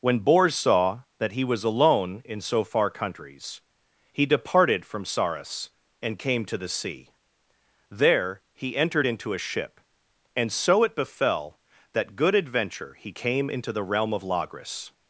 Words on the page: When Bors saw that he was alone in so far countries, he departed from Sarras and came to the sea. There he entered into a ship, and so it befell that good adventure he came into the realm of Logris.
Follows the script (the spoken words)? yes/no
yes